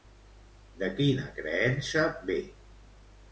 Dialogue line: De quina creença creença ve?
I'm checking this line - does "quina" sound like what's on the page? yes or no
yes